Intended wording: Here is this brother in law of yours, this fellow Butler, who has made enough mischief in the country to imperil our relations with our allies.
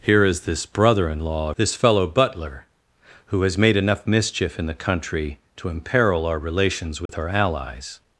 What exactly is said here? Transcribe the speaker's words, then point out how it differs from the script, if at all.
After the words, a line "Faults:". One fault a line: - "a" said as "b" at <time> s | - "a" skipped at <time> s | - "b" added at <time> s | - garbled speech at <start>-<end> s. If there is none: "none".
Here is this brother in law this fellow Butler, who has made enough mischief in the country to imperil our relations with our allies.
Faults:
- "of yours" skipped at 1.5 s